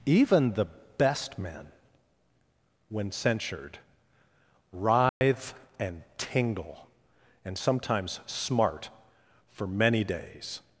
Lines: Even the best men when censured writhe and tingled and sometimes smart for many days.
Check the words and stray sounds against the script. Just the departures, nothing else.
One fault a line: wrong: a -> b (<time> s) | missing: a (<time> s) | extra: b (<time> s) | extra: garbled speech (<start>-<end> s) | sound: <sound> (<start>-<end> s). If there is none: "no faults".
sound: dropout (5.1-5.2 s)
wrong: tingled -> tingle (6.2 s)